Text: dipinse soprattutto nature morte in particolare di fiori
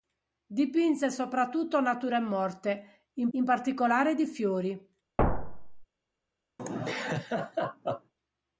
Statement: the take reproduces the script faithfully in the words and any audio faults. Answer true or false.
false